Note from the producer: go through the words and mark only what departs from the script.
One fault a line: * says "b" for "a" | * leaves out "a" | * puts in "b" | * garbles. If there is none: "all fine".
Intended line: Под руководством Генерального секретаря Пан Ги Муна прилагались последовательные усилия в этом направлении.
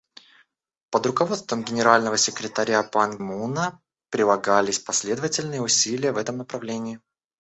* leaves out "Ги"